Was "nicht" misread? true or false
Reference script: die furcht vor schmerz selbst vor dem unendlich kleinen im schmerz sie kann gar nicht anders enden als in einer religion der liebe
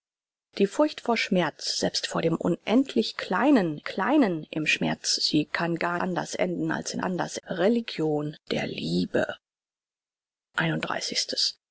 true